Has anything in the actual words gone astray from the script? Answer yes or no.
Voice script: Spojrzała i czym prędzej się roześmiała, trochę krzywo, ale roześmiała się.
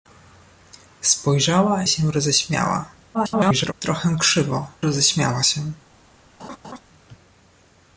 yes